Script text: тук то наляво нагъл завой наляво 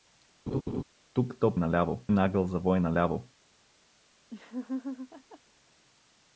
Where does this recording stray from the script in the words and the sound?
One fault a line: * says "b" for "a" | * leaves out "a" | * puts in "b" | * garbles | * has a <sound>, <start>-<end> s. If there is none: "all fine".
* has a laugh, 0.5-0.8 s
* has a laugh, 4.3-5.4 s